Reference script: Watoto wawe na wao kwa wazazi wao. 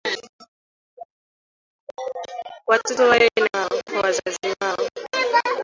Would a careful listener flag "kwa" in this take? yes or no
no